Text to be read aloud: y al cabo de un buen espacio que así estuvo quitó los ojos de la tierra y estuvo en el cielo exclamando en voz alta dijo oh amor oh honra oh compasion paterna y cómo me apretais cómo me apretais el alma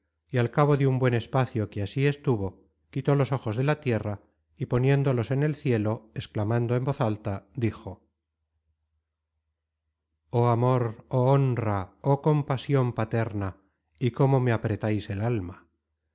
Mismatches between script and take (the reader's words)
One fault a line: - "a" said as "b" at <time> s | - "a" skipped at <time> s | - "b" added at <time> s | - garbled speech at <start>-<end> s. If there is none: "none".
- "estuvo" said as "poniéndolos" at 4.7 s
- "cómo me apretais" skipped at 15.1 s